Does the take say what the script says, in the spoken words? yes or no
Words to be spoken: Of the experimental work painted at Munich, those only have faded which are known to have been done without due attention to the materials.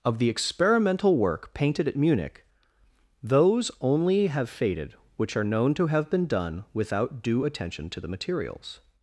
yes